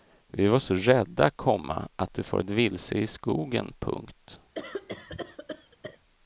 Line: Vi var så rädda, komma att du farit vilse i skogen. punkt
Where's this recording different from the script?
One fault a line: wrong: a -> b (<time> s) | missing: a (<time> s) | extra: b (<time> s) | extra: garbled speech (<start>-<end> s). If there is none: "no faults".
no faults